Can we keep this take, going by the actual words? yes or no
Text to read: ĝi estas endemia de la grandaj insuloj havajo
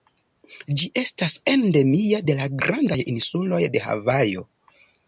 no